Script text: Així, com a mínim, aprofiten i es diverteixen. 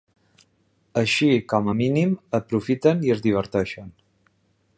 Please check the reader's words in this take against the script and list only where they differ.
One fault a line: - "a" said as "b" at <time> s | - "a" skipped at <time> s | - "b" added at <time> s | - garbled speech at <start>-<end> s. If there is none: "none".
none